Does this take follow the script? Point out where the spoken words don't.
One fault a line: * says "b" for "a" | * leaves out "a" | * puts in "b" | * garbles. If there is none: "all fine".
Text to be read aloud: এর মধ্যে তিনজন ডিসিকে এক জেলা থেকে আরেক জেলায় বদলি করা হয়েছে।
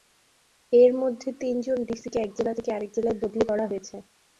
all fine